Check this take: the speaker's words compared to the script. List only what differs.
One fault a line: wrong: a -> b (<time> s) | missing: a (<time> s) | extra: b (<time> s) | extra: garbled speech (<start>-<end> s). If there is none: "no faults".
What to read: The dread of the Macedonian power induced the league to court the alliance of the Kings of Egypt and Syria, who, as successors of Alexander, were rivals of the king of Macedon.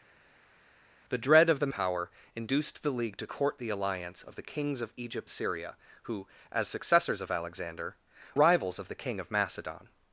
missing: Macedonian (1.7 s)
missing: and (5.3 s)
missing: were (8.0 s)